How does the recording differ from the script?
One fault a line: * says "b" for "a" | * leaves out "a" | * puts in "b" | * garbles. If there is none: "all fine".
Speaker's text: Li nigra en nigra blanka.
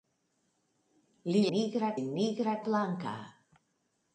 all fine